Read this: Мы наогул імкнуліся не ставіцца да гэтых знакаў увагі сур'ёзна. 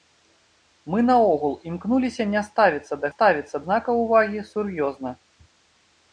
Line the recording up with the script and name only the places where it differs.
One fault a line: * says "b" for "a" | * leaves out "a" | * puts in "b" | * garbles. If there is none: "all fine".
* says "ставіцца" for "гэтых"